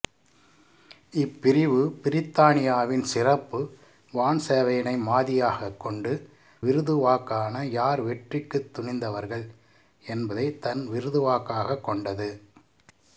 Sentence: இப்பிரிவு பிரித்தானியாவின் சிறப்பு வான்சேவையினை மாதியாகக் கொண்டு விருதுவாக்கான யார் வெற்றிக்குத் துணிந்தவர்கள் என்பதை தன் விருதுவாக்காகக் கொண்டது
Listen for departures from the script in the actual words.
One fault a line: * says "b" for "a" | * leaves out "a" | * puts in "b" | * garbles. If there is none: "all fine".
all fine